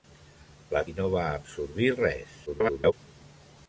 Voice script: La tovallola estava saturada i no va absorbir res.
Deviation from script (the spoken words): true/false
true